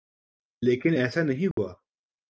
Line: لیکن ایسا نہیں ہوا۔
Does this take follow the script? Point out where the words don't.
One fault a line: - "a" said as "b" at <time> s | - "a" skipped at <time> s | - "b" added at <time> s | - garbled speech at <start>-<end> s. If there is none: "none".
none